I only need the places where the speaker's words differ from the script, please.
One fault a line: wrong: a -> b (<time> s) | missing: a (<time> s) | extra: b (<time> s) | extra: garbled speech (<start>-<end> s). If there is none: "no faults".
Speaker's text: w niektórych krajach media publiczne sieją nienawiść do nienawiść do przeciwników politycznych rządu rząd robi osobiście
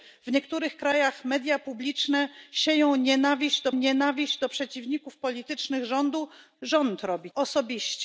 no faults